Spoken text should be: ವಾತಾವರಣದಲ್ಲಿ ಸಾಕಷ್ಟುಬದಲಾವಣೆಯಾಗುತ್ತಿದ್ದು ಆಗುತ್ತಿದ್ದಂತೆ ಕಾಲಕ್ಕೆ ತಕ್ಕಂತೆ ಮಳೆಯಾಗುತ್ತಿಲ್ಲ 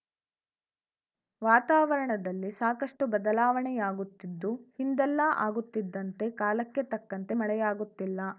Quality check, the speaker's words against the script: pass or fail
fail